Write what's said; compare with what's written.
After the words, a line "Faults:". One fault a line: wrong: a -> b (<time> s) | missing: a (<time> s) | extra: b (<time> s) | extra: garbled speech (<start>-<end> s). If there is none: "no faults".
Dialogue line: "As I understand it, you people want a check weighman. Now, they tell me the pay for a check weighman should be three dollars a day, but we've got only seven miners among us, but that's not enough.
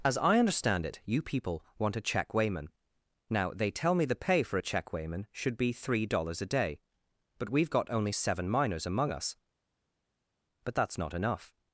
"As I understand it, you people want a check weighman. Now, they tell me the pay for a check weighman should be three dollars a day, but we've got only seven miners among us, but that's not enough.
Faults:
no faults